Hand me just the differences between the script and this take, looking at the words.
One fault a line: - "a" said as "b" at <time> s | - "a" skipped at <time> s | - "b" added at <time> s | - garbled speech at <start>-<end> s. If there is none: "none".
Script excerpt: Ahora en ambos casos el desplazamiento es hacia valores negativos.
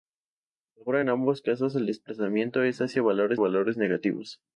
- "valores" added at 3.4 s